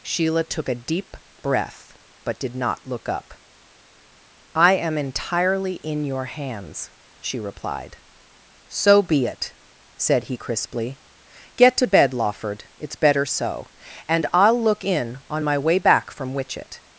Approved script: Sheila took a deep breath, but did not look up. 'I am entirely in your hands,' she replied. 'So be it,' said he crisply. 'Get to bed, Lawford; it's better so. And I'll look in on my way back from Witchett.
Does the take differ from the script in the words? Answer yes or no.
no